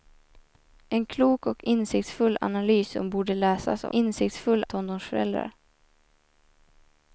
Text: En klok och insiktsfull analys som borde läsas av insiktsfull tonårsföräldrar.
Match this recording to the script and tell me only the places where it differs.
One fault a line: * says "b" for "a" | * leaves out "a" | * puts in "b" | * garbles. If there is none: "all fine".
all fine